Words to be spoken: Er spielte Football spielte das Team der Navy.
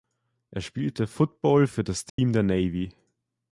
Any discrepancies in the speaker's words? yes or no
yes